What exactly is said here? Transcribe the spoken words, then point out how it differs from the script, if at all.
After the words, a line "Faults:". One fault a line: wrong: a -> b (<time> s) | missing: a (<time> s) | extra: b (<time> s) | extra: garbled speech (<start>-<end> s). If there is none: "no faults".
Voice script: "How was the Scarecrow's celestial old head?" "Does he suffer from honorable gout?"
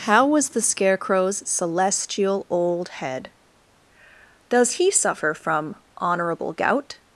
"How was the Scarecrow's celestial old head?" "Does he suffer from honorable gout?"
Faults:
no faults